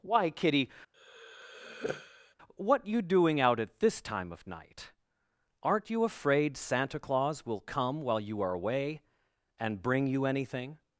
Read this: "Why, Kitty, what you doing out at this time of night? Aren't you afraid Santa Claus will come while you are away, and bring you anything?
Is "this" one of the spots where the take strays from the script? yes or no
no